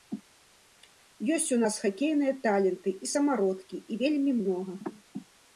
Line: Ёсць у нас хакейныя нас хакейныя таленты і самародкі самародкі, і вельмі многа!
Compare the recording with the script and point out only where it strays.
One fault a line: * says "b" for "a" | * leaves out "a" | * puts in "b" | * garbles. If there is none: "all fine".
* leaves out "нас хакейныя"
* leaves out "самародкі"